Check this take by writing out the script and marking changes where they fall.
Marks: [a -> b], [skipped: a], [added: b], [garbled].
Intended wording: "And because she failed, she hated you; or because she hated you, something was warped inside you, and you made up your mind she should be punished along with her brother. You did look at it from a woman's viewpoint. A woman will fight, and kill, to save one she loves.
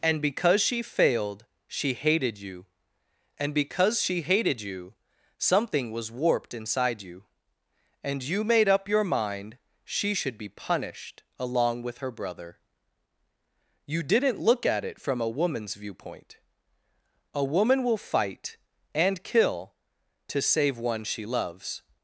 "And because she failed, she hated you; [or -> and] because she hated you, something was warped inside you, and you made up your mind she should be punished along with her brother. You [did -> didn't] look at it from a woman's viewpoint. A woman will fight, and kill, to save one she loves.